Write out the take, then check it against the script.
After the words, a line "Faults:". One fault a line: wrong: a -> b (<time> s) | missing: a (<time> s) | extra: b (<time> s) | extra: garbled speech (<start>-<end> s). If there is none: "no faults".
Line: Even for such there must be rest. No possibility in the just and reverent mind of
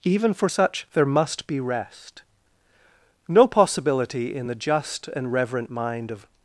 Even for such there must be rest. No possibility in the just and reverent mind of
Faults:
no faults